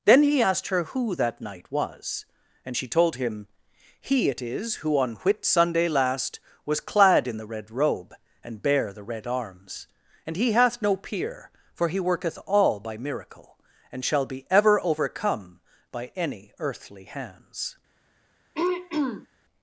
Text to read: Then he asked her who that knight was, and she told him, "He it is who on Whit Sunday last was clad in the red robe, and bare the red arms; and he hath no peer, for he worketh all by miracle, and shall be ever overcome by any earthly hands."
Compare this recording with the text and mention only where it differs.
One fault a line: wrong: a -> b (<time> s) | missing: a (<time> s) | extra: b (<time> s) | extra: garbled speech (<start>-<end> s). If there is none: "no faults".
no faults